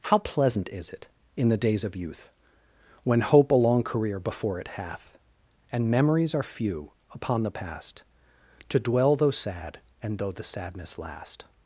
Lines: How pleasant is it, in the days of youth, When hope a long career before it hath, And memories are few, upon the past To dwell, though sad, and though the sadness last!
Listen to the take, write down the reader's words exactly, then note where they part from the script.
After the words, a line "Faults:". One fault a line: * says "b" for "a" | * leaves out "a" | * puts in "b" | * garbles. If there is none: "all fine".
How pleasant is it, in the days of youth, When hope a long career before it hath, And memories are few, upon the past To dwell, though sad, and though the sadness last!
Faults:
all fine